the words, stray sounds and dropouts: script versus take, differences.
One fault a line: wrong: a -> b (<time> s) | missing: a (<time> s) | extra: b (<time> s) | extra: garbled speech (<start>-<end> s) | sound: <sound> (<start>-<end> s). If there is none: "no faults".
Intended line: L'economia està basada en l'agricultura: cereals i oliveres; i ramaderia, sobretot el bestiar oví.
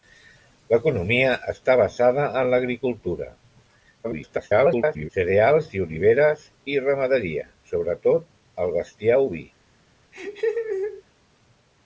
extra: garbled speech (4.0-5.1 s)
sound: laugh (10.1-11.0 s)